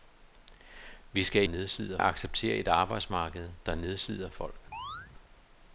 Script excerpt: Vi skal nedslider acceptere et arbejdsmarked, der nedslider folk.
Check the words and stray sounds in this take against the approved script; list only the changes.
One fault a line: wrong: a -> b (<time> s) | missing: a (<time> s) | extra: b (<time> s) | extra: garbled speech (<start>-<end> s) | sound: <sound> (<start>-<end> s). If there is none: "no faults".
sound: chirp (4.7-5.1 s)